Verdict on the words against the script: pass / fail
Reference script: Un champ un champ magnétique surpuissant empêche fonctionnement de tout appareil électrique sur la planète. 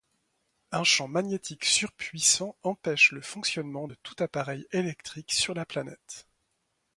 fail